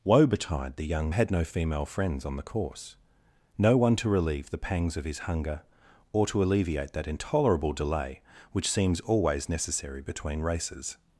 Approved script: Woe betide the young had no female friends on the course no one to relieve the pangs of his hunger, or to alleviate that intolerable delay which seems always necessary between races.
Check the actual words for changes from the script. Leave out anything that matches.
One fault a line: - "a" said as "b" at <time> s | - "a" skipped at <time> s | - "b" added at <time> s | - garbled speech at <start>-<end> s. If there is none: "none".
none